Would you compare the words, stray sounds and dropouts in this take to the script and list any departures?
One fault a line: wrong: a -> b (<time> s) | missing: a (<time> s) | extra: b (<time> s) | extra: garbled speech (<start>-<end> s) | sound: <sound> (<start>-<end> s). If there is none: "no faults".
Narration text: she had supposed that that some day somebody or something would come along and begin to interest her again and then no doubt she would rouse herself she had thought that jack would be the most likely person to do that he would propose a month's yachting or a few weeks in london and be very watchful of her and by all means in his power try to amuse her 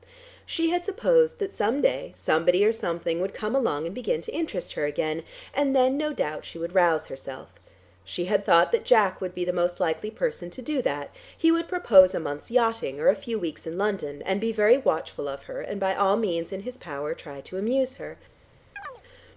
missing: that (1.5 s)
sound: chirp (18.8-19.0 s)